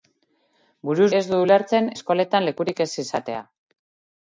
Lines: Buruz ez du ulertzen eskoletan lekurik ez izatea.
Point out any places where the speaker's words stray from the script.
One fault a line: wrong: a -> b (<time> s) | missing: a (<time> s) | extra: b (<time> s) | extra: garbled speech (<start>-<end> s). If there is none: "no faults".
no faults